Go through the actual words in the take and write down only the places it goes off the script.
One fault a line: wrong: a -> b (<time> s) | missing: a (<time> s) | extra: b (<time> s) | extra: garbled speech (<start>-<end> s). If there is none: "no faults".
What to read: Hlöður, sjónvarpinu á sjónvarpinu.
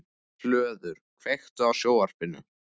wrong: sjónvarpinu -> kveiktu (1.2 s)